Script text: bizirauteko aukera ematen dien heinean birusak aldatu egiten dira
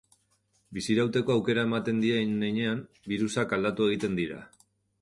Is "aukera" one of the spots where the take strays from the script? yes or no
no